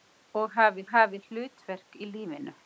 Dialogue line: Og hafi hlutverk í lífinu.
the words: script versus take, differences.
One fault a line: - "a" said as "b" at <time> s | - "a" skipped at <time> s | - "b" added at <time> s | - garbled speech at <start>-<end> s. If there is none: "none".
- "hafi" added at 0.9 s